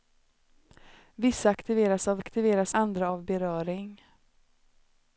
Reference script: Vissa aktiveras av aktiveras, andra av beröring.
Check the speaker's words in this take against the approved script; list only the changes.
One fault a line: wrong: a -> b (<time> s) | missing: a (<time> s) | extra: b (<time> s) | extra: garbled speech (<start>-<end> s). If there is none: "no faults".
no faults